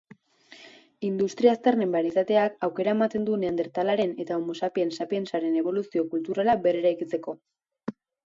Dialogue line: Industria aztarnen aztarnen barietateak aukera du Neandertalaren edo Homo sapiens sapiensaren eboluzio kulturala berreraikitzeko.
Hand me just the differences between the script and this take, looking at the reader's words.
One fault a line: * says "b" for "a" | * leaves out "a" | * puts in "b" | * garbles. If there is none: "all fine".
* leaves out "aztarnen"
* puts in "ematen"
* says "eta" for "edo"